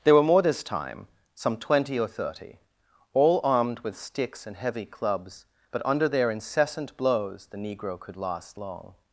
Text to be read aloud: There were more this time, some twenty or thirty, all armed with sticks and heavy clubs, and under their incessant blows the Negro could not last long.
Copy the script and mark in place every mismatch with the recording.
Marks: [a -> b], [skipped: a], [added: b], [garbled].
There were more this time, some twenty or thirty, all armed with sticks and heavy clubs, [and -> but] under their incessant blows the Negro could [skipped: not] last long.